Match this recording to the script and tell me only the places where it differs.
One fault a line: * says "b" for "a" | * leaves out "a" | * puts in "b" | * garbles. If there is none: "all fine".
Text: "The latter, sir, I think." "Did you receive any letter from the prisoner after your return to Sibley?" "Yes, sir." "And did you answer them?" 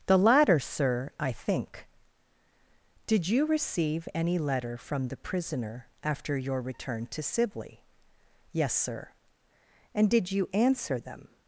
all fine